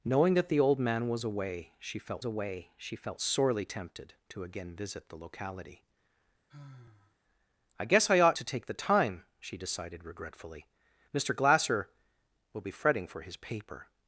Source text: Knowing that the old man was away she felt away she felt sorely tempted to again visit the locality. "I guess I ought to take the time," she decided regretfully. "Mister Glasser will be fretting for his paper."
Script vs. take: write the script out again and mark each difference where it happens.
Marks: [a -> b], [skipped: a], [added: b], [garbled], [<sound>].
Knowing that the old man was away she felt away she felt sorely tempted to again visit the locality. [sigh] "I guess I ought to take the time," she decided regretfully. "Mister Glasser will be fretting for his paper."